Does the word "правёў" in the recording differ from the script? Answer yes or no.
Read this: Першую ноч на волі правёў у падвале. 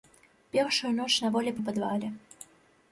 yes